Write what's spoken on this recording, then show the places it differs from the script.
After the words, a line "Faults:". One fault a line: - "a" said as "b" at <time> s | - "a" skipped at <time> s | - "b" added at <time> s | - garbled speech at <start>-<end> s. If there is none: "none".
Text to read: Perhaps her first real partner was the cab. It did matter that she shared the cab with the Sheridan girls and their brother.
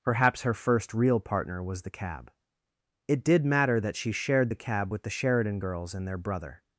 Perhaps her first real partner was the cab. It did matter that she shared the cab with the Sheridan girls and their brother.
Faults:
none